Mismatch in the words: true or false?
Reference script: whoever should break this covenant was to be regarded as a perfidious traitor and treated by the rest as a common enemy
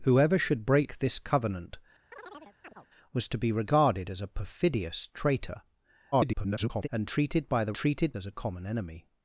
true